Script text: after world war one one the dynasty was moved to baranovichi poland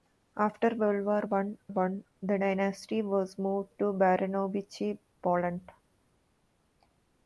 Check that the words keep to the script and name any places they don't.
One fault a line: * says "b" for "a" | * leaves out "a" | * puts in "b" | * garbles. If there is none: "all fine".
all fine